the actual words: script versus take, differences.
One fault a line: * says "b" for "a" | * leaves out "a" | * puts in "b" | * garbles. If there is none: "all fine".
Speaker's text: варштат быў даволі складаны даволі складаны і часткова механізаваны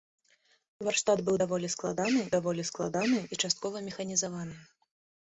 all fine